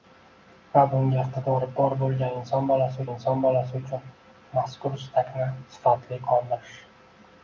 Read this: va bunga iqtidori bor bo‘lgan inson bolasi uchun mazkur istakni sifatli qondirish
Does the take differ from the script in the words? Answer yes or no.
yes